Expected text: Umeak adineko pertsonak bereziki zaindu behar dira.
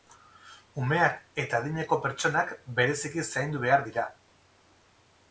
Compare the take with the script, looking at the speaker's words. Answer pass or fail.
fail